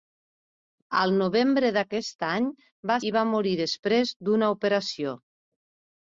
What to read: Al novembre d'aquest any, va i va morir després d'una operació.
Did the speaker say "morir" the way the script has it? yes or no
yes